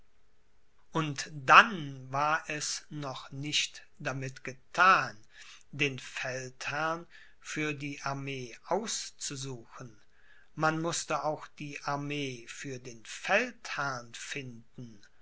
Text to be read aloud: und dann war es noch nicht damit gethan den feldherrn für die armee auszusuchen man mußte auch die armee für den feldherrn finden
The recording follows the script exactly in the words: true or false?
true